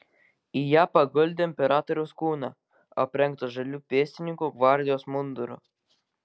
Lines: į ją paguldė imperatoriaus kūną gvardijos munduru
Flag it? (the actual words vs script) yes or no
yes